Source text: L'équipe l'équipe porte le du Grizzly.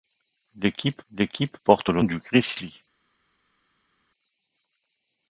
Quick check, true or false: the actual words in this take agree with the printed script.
true